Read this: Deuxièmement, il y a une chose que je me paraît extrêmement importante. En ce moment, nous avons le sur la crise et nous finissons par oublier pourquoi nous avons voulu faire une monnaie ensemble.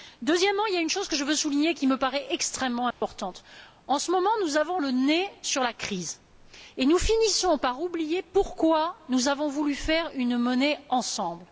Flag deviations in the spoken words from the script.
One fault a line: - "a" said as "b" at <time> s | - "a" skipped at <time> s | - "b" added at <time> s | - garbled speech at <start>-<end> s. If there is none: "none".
- "veux souligner qui" added at 1.2 s
- "nez" added at 4.9 s